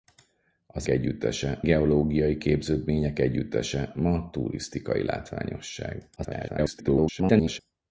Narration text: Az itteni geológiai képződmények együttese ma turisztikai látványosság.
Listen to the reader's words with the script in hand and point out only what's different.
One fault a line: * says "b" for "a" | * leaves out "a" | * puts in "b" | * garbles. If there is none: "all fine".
* says "együttese" for "itteni"
* garbles